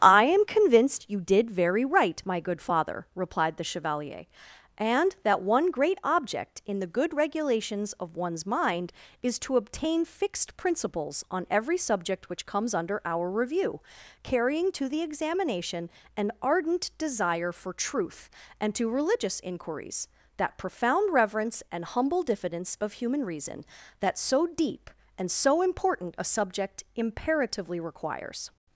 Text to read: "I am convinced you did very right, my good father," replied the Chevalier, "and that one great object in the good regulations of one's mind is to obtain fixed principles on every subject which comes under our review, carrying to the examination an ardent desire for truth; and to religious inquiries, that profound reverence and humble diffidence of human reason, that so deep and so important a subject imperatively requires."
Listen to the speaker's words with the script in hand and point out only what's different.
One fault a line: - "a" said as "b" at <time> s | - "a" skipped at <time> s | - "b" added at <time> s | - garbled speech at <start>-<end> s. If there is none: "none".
none